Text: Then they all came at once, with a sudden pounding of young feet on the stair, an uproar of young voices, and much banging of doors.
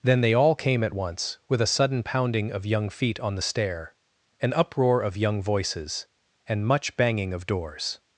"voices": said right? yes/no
yes